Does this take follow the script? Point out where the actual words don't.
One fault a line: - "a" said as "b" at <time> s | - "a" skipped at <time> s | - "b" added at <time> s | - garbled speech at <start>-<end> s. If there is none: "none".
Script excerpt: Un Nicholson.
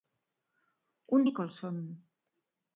none